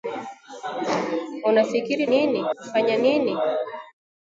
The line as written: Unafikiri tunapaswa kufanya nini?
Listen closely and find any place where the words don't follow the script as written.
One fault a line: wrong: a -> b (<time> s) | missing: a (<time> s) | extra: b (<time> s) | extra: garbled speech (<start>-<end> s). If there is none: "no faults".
wrong: tunapaswa -> nini (2.0 s)